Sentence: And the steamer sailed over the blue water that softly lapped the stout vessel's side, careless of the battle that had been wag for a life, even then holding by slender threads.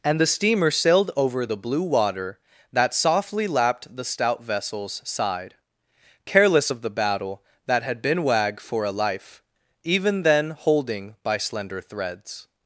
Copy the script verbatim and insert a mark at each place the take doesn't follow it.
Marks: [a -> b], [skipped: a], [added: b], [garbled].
And the steamer sailed over the blue water that softly lapped the stout vessel's side, careless of the battle that had been wag for a life, even then holding by slender threads.